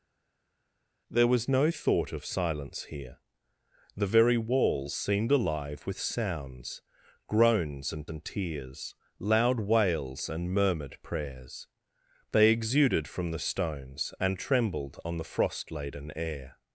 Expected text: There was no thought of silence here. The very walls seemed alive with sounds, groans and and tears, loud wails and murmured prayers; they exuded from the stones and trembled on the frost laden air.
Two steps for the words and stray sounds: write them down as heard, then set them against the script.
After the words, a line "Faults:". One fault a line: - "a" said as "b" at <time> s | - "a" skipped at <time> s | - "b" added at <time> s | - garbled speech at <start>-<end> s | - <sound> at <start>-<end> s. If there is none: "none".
There was no thought of silence here. The very walls seemed alive with sounds, groans and and tears, loud wails and murmured prayers; they exuded from the stones and trembled on the frost laden air.
Faults:
none